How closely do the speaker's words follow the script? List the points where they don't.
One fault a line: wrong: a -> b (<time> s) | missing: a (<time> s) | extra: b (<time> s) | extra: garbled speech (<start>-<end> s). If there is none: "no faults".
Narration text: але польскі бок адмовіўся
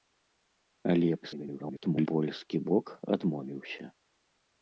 extra: garbled speech (1.2-2.1 s)